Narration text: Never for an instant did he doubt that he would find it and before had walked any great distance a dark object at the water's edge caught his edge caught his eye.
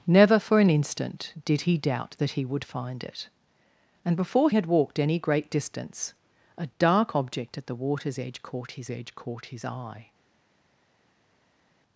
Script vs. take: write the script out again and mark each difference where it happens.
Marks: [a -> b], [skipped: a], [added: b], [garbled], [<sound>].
Never for an instant did he doubt that he would find it and before had walked any great distance a dark object at the water's edge caught his edge caught his eye.